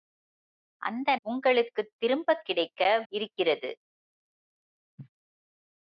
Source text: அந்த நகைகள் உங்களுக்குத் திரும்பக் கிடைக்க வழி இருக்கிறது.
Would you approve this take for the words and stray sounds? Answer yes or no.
no